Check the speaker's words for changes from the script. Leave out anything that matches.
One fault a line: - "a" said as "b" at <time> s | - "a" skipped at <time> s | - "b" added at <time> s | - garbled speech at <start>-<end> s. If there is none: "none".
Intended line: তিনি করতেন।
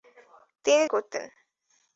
none